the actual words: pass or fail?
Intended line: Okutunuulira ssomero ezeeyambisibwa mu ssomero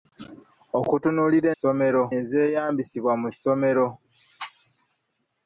pass